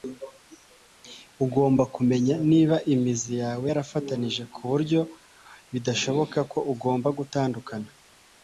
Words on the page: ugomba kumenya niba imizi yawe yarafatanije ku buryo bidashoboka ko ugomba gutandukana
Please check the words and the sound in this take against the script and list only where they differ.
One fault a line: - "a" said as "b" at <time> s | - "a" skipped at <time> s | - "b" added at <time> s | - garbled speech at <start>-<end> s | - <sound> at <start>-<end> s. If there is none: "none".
none